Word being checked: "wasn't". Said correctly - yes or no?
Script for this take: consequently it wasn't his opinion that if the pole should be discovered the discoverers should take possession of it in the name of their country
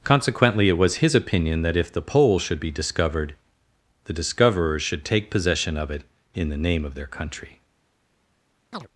no